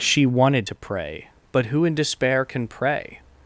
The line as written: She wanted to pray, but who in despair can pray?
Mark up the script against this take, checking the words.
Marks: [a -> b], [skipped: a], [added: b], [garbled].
She wanted to pray, but who in despair can pray?